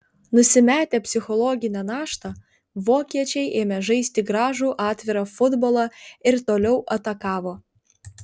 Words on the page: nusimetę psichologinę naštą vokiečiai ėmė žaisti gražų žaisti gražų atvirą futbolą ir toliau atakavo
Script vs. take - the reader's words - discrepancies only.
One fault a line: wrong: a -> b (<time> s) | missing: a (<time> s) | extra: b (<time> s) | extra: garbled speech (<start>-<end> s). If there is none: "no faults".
missing: žaisti gražų (4.7 s)